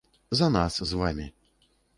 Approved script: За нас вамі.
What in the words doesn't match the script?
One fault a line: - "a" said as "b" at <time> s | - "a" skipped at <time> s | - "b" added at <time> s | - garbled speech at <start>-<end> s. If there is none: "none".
- "з" added at 0.8 s